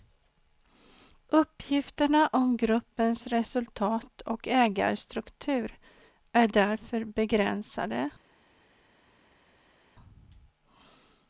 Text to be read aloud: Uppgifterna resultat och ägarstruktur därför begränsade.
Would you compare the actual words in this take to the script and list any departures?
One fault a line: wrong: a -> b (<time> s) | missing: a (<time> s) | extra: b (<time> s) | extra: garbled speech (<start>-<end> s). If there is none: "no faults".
extra: om gruppens (2.3 s)
extra: är (6.3 s)